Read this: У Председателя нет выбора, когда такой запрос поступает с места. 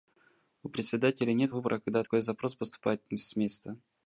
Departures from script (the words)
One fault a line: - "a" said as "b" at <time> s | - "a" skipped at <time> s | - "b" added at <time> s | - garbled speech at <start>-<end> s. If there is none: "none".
none